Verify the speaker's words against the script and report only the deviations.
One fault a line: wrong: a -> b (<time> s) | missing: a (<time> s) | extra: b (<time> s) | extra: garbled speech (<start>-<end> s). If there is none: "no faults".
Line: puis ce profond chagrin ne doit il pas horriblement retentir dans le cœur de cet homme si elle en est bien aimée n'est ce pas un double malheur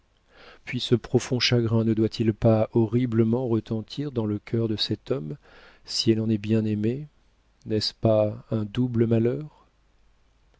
no faults